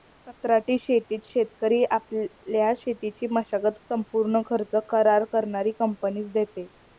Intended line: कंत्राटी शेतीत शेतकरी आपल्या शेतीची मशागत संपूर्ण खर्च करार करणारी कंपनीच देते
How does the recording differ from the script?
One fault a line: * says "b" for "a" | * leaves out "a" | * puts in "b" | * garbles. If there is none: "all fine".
all fine